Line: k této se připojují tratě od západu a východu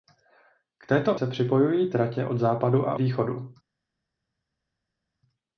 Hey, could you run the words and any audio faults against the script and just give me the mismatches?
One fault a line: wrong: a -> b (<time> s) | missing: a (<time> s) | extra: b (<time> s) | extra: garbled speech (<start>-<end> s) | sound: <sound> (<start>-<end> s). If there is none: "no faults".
no faults